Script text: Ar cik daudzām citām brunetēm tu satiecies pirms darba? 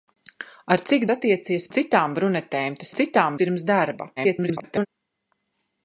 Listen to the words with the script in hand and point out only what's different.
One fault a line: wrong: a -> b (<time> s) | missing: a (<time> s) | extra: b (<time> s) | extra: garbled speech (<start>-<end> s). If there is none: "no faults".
wrong: daudzām -> satiecies (1.1 s)
wrong: satiecies -> citām (3.0 s)
extra: garbled speech (4.2-4.9 s)